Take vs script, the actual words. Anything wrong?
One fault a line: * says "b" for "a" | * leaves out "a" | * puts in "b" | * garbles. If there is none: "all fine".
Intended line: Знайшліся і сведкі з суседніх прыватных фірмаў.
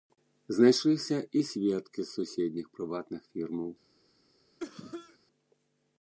all fine